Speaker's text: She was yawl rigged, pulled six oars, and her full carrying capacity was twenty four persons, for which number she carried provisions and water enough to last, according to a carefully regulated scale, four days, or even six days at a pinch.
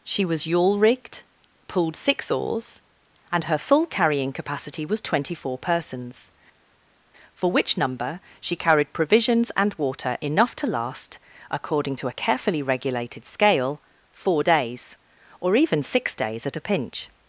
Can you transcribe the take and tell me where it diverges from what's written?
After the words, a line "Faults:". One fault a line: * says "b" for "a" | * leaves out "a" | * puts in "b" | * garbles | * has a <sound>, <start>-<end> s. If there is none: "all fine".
She was yawl rigged, pulled six oars, and her full carrying capacity was twenty four persons, for which number she carried provisions and water enough to last, according to a carefully regulated scale, four days, or even six days at a pinch.
Faults:
all fine